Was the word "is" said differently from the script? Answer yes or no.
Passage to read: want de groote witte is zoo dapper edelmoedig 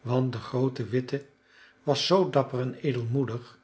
yes